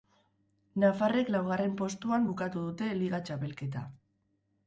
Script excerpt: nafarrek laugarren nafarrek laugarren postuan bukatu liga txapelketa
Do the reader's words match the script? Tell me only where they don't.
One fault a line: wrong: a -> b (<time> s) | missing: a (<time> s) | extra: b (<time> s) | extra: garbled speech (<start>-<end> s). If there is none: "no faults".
missing: nafarrek laugarren (1.7 s)
extra: dute (2.7 s)